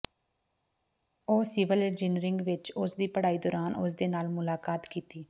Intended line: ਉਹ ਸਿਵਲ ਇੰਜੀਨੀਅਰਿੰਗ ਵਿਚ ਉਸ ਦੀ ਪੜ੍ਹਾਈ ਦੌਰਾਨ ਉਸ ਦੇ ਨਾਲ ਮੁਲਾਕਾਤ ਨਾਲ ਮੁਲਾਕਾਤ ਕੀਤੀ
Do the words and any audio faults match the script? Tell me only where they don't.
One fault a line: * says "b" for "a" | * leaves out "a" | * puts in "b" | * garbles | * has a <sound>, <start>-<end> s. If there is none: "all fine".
* leaves out "ਨਾਲ ਮੁਲਾਕਾਤ"